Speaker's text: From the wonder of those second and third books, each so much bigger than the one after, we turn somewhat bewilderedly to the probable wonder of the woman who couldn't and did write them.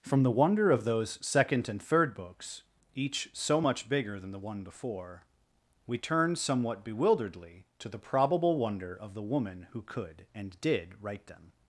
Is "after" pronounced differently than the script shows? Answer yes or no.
yes